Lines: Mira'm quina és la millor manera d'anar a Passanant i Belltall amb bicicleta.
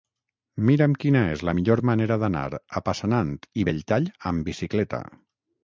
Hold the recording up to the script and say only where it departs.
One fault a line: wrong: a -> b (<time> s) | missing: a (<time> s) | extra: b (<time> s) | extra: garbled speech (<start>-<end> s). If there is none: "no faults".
no faults